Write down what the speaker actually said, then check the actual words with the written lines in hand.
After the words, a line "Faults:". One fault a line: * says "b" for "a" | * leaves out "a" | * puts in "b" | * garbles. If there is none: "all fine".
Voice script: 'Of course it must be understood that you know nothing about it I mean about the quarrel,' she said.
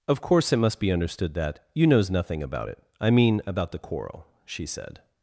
'Of course it must be understood that you knows nothing about it I mean about the quarrel,' she said.
Faults:
* says "knows" for "know"